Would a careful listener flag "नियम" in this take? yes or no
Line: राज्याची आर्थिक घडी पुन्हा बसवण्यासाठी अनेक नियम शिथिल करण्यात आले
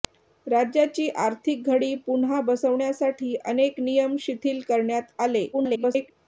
no